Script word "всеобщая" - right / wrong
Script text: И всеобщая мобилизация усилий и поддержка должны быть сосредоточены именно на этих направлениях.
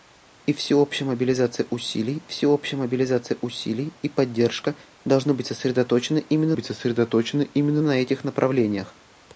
right